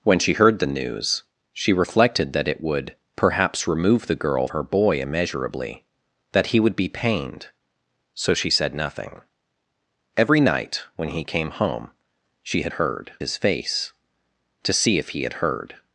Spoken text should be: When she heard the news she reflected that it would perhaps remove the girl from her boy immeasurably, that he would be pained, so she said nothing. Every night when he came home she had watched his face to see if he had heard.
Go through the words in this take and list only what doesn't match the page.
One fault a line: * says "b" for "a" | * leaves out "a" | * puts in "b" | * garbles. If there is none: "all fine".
* leaves out "from"
* says "heard" for "watched"